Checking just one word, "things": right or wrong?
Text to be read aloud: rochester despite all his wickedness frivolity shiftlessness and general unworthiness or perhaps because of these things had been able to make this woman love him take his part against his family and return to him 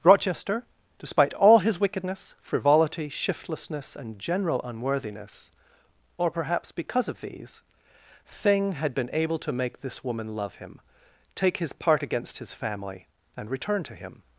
wrong